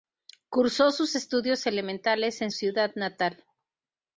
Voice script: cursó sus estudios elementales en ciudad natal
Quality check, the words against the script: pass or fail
pass